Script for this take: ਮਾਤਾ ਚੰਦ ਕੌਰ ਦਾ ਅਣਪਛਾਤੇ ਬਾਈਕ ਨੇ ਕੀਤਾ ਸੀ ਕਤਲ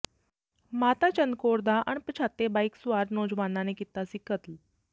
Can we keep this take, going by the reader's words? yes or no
no